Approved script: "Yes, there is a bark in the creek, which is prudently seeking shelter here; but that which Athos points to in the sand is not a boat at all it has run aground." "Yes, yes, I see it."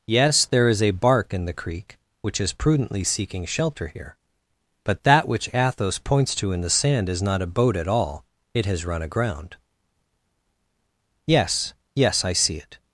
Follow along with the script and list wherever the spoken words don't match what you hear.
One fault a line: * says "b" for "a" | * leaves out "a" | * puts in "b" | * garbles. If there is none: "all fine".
all fine